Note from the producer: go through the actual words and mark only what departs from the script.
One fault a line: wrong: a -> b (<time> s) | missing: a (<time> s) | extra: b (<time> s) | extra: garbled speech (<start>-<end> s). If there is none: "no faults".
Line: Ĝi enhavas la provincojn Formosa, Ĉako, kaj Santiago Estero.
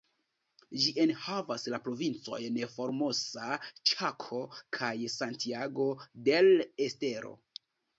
extra: del (6.3 s)